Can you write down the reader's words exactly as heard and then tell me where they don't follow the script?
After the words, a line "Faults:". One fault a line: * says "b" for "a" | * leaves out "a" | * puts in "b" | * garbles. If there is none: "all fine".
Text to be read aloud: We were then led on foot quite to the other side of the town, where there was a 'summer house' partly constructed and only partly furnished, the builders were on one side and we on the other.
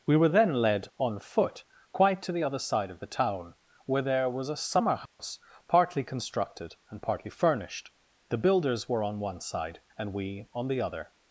We were then led on foot quite to the other side of the town, where there was a 'summer house' partly constructed and partly furnished, the builders were on one side and we on the other.
Faults:
* leaves out "only"